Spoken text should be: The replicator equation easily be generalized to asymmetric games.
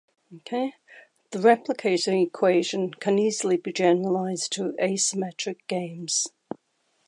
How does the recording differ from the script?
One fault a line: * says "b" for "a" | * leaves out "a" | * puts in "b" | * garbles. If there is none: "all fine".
* puts in "can"